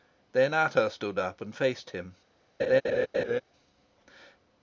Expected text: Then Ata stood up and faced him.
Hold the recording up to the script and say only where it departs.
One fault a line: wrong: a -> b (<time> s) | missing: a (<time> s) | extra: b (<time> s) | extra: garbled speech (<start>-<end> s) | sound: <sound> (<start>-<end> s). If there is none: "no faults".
sound: laugh (2.6-3.4 s)